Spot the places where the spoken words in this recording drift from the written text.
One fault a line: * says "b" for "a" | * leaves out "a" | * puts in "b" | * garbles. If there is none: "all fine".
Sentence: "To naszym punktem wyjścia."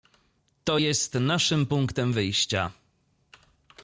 * puts in "jest"